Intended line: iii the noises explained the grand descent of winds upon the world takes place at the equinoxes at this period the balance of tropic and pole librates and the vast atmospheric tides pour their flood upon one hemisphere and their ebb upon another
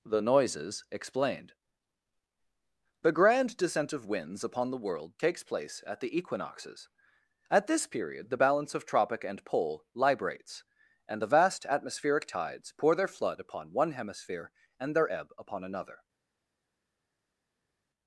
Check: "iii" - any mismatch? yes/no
yes